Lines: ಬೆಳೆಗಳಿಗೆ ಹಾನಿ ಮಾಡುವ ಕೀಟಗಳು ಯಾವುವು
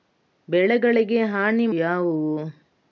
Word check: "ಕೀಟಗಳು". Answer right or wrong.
wrong